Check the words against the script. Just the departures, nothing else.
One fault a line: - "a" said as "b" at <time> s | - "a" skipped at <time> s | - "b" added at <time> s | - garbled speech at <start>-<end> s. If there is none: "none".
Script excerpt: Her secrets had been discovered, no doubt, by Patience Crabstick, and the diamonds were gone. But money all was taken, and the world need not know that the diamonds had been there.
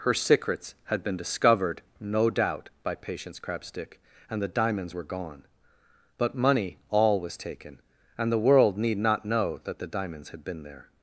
none